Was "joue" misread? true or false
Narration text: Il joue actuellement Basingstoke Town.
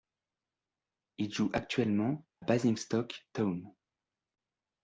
false